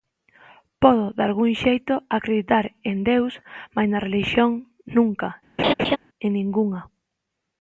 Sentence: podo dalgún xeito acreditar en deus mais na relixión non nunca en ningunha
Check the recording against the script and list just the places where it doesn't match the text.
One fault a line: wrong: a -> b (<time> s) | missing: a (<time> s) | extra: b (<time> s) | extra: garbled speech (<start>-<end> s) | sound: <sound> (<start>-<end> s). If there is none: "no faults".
missing: non (4.5 s)
sound: laugh (5.6-6.0 s)